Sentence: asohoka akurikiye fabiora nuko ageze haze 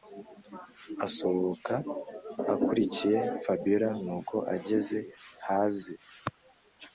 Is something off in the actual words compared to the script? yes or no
no